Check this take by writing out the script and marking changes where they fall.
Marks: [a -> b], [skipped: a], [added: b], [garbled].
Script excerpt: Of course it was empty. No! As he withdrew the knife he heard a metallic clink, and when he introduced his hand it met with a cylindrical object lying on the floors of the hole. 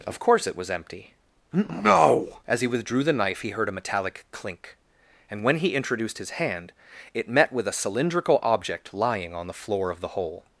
Of course it was empty. No! As he withdrew the knife he heard a metallic clink, and when he introduced his hand it met with a cylindrical object lying on the [floors -> floor] of the hole.